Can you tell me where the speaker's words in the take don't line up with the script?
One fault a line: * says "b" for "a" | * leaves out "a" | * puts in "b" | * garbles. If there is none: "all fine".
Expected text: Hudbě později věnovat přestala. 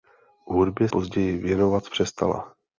all fine